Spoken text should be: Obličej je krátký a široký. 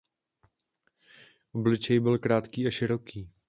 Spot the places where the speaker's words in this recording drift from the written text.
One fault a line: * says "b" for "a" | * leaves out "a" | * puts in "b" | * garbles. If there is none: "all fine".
* says "byl" for "je"